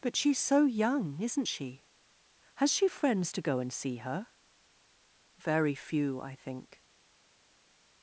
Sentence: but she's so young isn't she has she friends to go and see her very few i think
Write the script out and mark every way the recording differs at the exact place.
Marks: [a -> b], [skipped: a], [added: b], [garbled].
but she's so young isn't she has she friends to go and see her very few i think